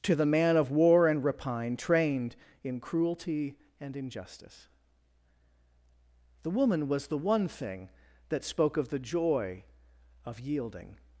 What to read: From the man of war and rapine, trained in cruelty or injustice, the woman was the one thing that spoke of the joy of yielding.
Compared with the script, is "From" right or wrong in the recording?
wrong